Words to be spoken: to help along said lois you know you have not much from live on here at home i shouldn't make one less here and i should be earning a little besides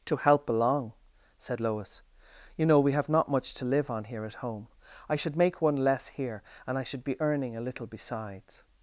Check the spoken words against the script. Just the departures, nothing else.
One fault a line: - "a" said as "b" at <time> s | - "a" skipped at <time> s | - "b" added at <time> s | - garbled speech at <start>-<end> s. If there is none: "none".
- "you" said as "we" at 2.8 s
- "from" said as "to" at 3.5 s
- "shouldn't" said as "should" at 5.2 s